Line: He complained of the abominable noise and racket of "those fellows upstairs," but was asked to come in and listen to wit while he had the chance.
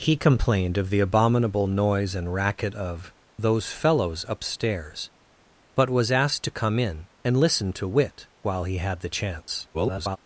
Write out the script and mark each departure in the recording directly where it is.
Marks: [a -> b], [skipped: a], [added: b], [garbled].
He complained of the abominable noise and racket of "those fellows upstairs," but was asked to come in and listen to wit while he had the chance. [garbled]